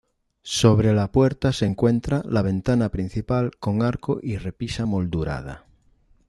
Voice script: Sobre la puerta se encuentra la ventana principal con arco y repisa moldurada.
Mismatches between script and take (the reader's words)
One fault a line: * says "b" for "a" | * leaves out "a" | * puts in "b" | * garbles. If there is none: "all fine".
all fine